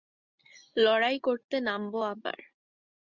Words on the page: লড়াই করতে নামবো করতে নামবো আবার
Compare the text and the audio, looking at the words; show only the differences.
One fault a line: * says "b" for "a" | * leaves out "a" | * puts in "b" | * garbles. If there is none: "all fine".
* leaves out "করতে নামবো"